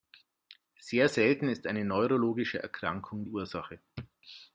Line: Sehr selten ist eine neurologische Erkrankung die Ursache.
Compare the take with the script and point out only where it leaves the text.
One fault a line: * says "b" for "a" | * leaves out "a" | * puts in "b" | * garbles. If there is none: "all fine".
* leaves out "die"